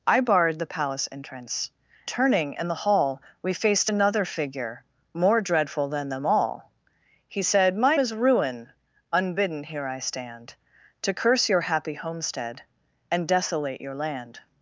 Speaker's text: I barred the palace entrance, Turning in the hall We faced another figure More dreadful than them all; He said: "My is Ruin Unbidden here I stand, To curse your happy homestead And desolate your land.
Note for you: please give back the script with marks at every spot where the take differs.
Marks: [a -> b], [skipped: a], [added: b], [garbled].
I barred the palace entrance, Turning in the hall We faced another figure More dreadful than them all; He said: "My is Ruin Unbidden here I stand, To curse your happy homestead And desolate your land.